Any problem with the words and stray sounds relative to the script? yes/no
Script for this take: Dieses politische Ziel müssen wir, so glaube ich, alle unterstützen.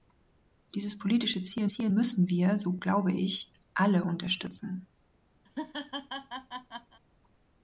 yes